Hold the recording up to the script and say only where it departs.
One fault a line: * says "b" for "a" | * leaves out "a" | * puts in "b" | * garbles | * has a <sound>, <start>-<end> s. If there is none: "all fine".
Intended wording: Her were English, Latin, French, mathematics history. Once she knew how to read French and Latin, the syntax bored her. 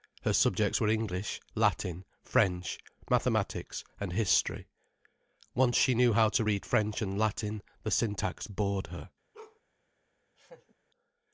* puts in "subjects"
* puts in "and"
* has a bark, 9.3-9.6 s
* has a laugh, 10.4-10.7 s